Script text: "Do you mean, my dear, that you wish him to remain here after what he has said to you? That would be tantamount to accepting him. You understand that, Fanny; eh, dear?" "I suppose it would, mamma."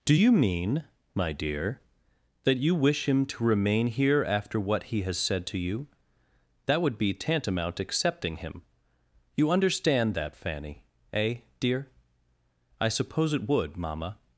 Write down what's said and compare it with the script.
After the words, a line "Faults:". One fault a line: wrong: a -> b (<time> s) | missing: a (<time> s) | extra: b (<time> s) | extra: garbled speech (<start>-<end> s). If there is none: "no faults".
"Do you mean, my dear, that you wish him to remain here after what he has said to you? That would be tantamount accepting him. You understand that, Fanny; eh, dear?" "I suppose it would, mamma."
Faults:
missing: to (7.8 s)